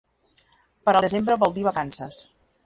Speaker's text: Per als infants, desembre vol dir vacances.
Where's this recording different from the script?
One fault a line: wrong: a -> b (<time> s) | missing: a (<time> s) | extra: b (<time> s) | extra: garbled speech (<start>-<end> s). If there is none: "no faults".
missing: als infants (0.9 s)